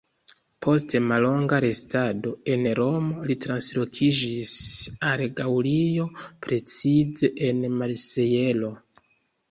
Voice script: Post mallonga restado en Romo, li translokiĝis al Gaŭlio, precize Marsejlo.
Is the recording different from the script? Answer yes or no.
yes